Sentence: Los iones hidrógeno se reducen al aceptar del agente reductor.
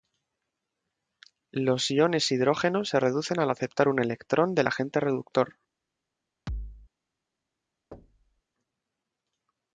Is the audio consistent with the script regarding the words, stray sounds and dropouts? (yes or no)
no